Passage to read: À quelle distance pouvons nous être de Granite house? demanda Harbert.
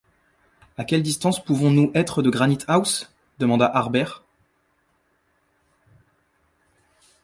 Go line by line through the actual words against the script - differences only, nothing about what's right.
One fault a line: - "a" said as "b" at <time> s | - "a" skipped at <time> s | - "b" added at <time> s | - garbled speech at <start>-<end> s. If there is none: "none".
none